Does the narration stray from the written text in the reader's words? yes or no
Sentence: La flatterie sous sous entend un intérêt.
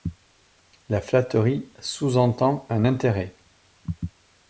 yes